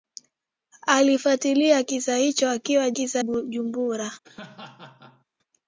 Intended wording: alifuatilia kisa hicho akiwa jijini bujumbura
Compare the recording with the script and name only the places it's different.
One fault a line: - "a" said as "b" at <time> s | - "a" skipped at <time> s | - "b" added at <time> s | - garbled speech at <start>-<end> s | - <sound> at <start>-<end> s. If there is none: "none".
- "jijini" said as "kisa" at 2.9 s
- laugh at 4.2-5.3 s